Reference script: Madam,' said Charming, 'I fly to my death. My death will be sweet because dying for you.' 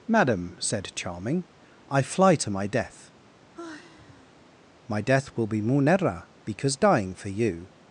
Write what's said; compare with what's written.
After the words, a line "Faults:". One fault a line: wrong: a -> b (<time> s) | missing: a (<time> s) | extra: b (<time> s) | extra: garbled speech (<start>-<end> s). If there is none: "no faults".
Madam,' said Charming, 'I fly to my death. My death will be munera because dying for you.'
Faults:
wrong: sweet -> munera (5.6 s)